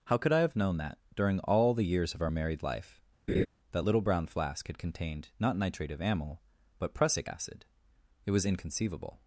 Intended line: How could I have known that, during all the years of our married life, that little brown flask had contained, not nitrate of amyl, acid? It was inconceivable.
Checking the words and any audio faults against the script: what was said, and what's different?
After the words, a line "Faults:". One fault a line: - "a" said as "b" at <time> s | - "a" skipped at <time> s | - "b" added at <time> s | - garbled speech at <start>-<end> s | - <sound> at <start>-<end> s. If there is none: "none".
How could I have known that, during all the years of our married life, that little brown flask had contained, not nitrate of amyl, but prussic acid? It was inconceivable.
Faults:
- laugh at 3.3-3.5 s
- "but prussic" added at 6.8 s